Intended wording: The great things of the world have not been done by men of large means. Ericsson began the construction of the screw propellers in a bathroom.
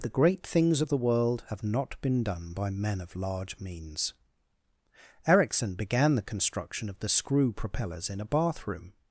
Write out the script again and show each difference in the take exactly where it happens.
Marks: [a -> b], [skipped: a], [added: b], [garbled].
The great things of the world have not been done by men of large means. Ericsson began the construction of the screw propellers in a bathroom.